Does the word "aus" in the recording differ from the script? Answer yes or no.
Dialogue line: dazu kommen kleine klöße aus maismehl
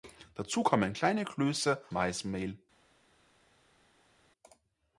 yes